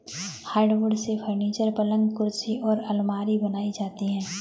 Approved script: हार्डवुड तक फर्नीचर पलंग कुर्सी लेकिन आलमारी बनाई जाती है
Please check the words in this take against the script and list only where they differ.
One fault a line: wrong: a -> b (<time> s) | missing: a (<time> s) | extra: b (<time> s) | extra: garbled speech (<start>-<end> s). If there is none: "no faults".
wrong: तक -> से (0.9 s)
wrong: लेकिन -> और (2.6 s)